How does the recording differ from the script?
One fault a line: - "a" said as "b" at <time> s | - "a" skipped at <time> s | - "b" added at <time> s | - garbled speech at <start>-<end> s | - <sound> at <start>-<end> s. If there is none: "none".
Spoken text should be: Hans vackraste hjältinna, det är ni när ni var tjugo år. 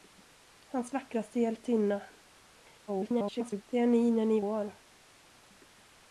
- garbled speech at 2.9-3.6 s
- "var tjugo" skipped at 4.4 s